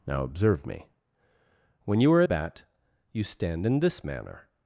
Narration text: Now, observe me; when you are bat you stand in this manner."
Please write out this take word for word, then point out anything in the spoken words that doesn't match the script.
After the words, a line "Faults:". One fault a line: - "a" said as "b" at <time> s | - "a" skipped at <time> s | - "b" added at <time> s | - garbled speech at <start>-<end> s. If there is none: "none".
Now, observe me; when you are bat you stand in this manner."
Faults:
none